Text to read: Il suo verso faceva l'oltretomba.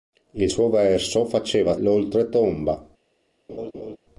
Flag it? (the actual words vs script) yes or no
no